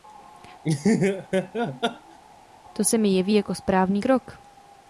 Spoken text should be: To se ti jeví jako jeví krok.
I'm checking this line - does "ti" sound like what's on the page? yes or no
no